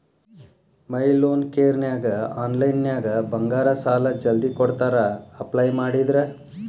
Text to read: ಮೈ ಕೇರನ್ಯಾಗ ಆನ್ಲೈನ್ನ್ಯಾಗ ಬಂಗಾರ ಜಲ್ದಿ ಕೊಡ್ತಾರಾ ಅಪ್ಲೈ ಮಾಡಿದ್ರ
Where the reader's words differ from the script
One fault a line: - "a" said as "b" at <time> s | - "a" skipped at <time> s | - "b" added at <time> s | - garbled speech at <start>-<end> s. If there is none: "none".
- "ಲೋನ್" added at 1.1 s
- "ಸಾಲಾ" added at 3.8 s